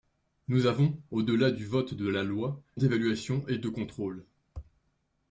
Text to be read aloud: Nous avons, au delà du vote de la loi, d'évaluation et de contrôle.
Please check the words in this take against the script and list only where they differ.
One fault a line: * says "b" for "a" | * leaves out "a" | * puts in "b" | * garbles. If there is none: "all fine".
all fine